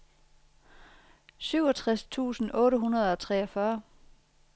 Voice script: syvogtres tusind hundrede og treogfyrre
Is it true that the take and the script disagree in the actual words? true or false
true